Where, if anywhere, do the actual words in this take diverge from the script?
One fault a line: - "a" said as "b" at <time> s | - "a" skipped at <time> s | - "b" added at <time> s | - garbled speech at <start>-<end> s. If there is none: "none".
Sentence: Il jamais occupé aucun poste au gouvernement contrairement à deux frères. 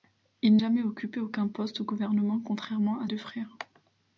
none